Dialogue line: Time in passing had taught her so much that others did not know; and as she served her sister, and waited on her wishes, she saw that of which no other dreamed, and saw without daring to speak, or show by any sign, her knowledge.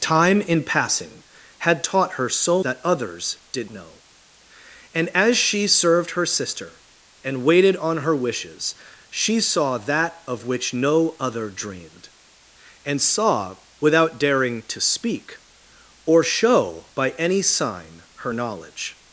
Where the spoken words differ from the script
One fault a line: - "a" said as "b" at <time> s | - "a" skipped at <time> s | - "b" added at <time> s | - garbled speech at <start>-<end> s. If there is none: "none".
- "much" skipped at 2.6 s
- "not" skipped at 3.7 s